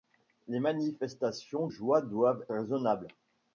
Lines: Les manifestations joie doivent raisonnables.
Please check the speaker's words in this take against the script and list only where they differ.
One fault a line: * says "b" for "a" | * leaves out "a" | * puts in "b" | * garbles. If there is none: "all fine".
all fine